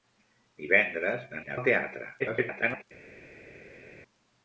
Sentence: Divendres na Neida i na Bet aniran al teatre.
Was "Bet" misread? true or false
true